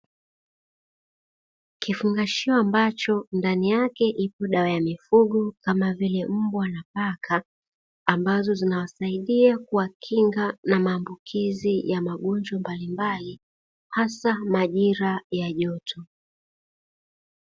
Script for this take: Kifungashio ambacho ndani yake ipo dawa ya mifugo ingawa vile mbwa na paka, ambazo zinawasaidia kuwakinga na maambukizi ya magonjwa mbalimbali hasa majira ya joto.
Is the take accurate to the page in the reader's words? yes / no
no